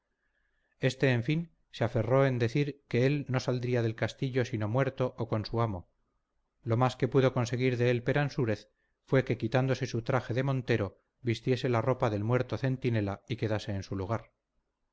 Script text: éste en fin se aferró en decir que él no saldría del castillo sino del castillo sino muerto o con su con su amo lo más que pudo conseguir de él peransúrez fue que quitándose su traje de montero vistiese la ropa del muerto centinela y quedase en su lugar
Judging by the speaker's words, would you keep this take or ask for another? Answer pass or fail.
fail